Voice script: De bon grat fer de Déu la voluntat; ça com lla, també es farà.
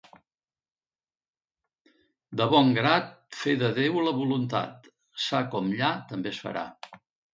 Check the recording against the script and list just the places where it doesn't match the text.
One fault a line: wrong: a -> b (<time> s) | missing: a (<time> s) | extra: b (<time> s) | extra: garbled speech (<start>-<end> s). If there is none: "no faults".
no faults